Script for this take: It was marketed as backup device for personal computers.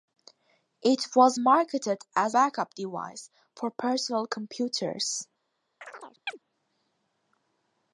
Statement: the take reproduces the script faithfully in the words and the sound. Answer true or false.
false